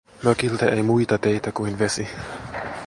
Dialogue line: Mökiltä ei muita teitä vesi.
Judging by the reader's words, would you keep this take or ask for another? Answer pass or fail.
fail